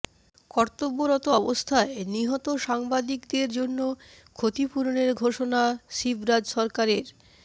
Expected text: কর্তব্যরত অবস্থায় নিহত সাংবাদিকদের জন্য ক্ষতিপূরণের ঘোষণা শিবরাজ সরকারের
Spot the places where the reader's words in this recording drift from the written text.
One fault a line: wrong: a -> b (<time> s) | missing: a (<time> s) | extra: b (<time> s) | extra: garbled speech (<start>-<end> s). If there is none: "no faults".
no faults